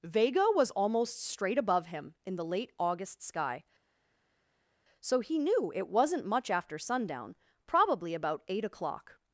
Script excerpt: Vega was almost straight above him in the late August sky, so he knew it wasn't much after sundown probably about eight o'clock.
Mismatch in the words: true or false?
false